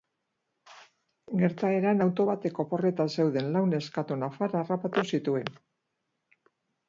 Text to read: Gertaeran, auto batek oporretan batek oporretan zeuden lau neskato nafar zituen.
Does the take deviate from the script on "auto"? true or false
false